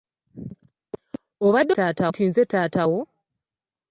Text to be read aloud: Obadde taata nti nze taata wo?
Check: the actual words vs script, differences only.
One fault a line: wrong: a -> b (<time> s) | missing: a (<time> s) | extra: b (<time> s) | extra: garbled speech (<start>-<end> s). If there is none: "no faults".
no faults